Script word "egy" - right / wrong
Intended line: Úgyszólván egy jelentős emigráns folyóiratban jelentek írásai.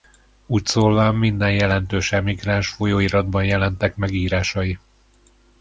wrong